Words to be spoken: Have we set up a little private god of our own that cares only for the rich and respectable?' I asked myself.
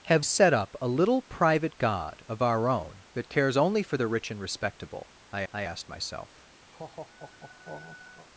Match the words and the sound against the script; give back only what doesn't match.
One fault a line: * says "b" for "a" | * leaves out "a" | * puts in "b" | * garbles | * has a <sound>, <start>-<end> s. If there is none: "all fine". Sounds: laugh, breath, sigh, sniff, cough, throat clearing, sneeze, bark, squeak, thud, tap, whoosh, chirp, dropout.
* leaves out "we"
* puts in "I"
* has a laugh, 6.7-8.3 s